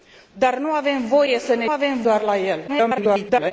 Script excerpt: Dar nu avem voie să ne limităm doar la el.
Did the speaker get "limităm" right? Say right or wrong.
wrong